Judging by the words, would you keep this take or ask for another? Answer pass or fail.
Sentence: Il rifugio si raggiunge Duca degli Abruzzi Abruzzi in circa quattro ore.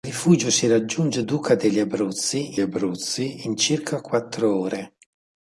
pass